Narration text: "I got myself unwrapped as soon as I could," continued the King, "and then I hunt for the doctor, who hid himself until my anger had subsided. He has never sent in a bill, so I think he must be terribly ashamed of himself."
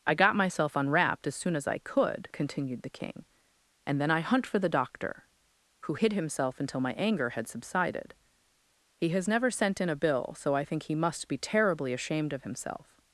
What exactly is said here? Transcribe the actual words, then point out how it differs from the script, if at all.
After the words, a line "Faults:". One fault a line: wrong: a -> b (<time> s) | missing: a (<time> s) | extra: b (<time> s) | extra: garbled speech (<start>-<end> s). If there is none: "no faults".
"I got myself unwrapped as soon as I could," continued the King, "and then I hunt for the doctor, who hid himself until my anger had subsided. He has never sent in a bill, so I think he must be terribly ashamed of himself."
Faults:
no faults